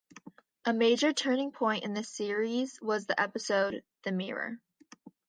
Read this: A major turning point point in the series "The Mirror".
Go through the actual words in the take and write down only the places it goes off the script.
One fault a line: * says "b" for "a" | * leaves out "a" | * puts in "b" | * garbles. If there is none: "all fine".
* leaves out "point"
* puts in "was the episode"